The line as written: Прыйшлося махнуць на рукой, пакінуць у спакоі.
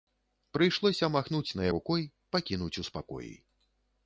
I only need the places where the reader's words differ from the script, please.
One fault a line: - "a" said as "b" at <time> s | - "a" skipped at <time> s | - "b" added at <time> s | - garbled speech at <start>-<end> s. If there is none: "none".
none